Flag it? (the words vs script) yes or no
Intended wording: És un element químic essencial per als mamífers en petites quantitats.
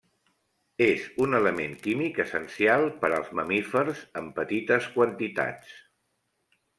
no